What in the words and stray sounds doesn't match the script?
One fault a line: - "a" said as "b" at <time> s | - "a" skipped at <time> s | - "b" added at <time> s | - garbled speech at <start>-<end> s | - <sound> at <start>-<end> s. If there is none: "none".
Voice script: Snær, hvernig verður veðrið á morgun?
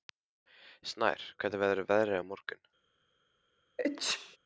- sneeze at 3.8-4.4 s